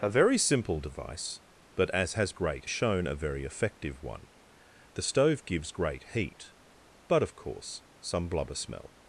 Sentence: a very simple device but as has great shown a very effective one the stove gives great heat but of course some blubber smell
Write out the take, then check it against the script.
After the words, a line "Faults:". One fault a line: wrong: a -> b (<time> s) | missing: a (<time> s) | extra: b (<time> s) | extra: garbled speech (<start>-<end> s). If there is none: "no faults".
a very simple device but as has great shown a very effective one the stove gives great heat but of course some blubber smell
Faults:
no faults